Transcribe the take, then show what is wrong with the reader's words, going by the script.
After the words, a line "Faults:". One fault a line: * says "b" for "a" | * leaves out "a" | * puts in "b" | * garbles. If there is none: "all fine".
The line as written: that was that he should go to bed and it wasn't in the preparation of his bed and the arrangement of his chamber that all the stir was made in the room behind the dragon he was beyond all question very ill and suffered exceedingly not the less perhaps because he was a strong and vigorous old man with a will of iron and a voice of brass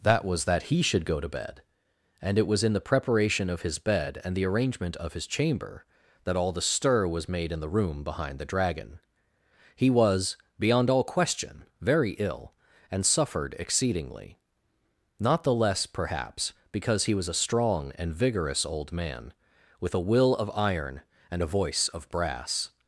that was that he should go to bed and it was in the preparation of his bed and the arrangement of his chamber that all the stir was made in the room behind the dragon he was beyond all question very ill and suffered exceedingly not the less perhaps because he was a strong and vigorous old man with a will of iron and a voice of brass
Faults:
* says "was" for "wasn't"